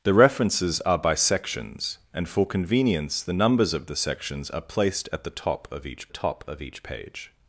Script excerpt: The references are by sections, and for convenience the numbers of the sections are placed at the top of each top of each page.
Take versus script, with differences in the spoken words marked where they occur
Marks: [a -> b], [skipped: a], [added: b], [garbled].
The references are by sections, and for convenience the numbers of the sections are placed at the top of each top of each page.